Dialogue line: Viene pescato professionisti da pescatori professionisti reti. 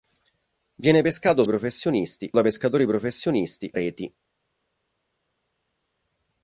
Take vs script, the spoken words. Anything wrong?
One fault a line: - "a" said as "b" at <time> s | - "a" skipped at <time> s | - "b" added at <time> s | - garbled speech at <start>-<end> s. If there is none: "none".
none